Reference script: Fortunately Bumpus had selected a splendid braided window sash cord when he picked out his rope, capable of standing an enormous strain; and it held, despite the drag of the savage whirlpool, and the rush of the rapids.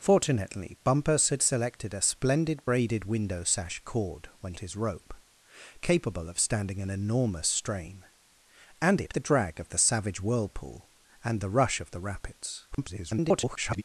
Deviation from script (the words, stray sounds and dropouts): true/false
true